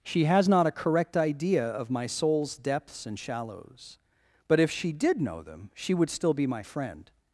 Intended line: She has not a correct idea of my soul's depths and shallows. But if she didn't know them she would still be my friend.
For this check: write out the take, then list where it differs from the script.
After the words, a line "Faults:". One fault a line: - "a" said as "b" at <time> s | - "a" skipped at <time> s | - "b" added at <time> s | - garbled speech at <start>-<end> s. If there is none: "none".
She has not a correct idea of my soul's depths and shallows. But if she did know them she would still be my friend.
Faults:
- "didn't" said as "did" at 4.9 s